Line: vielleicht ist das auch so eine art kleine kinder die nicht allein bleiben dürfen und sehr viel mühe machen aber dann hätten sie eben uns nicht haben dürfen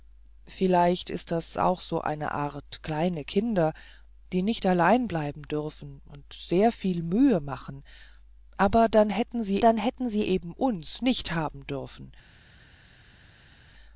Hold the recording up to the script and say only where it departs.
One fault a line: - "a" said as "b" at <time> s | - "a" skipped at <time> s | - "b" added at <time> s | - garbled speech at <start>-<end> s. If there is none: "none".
- "dann hätten sie" added at 9.6 s